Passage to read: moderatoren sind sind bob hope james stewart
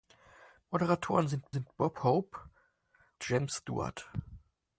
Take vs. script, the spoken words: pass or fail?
pass